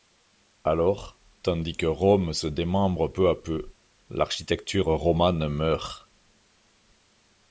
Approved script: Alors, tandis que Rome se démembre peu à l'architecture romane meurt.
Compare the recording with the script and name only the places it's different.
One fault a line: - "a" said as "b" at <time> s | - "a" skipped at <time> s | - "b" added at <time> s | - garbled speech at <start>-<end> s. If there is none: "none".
- "peu" added at 3.4 s